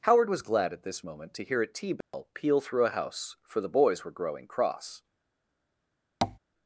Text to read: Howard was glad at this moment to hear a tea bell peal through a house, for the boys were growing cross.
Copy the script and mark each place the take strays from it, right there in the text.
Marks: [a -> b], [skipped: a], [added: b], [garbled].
Howard was glad at this moment to hear a tea bell peal through a house, for the boys were growing cross.